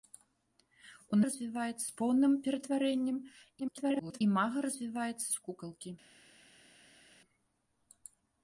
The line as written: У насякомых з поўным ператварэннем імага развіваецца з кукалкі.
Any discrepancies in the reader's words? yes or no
yes